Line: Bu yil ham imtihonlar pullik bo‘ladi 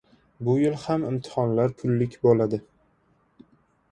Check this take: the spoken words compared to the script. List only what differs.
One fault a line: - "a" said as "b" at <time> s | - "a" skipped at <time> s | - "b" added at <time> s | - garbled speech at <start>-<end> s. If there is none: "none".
none